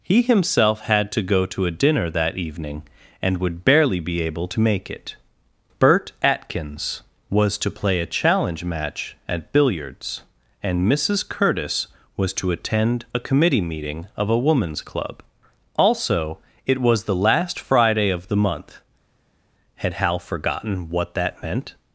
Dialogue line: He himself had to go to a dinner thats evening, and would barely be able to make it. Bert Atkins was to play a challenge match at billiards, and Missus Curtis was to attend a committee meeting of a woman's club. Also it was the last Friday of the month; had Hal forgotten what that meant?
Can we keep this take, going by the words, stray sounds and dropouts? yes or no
no